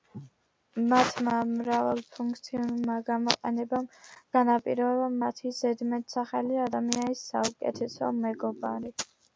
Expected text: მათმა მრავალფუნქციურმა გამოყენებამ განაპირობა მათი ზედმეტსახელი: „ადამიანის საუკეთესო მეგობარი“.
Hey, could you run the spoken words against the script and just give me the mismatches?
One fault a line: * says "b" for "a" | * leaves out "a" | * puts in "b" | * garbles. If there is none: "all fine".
all fine